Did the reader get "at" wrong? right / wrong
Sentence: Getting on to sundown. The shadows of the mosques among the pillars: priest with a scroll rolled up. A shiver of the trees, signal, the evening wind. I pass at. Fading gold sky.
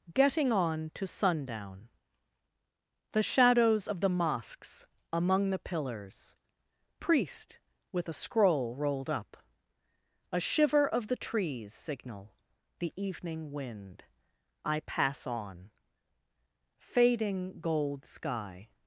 wrong